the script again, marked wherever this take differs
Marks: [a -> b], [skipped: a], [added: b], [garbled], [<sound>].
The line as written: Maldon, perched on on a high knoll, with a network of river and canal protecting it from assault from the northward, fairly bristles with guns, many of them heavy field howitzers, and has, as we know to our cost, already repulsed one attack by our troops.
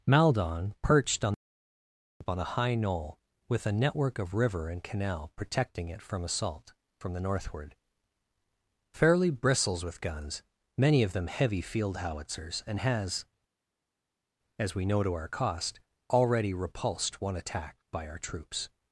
Maldon, perched on on a high knoll, with a network of river and canal protecting it from assault from the northward, fairly bristles with guns, many of them heavy field howitzers, and has, as we know to our cost, already repulsed one attack by our troops.